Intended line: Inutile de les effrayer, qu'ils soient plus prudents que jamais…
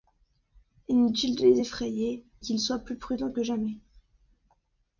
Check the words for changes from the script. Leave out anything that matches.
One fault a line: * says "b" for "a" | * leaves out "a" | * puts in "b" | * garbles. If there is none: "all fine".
all fine